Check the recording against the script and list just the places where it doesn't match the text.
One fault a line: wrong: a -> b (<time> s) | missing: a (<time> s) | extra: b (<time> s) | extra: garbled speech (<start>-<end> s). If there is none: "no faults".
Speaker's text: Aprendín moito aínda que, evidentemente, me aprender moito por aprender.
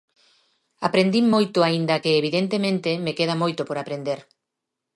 wrong: aprender -> queda (3.2 s)